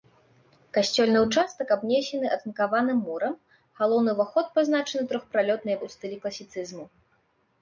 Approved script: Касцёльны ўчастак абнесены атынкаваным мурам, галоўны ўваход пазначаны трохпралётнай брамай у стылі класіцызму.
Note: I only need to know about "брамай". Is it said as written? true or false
false